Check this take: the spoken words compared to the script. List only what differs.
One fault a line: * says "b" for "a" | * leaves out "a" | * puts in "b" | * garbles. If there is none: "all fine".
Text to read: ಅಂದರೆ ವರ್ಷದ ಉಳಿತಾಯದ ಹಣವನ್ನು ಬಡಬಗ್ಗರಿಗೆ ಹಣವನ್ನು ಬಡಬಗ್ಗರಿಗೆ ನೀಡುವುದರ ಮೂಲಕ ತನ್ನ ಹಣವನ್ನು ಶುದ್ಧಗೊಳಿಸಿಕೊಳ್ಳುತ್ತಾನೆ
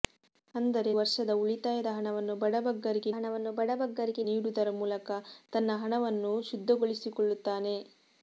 all fine